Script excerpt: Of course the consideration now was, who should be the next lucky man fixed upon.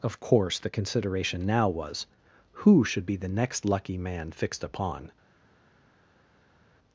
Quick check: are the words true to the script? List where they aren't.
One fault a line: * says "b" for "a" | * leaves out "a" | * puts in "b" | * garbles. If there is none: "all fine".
all fine